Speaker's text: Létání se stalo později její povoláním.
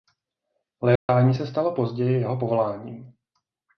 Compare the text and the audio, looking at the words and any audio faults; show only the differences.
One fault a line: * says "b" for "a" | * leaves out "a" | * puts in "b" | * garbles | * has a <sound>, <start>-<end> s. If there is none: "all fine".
* has a dropout, 1.0-1.1 s
* says "jeho" for "její"